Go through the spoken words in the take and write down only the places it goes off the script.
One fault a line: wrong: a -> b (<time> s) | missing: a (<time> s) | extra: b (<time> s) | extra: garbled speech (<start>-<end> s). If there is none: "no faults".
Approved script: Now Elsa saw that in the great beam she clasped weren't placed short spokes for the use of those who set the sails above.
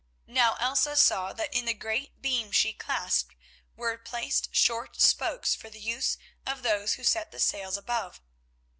wrong: weren't -> were (3.8 s)